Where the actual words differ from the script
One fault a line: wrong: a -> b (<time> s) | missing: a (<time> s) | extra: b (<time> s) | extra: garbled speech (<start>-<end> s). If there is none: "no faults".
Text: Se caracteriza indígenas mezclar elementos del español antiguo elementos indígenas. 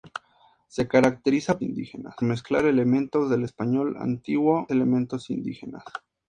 no faults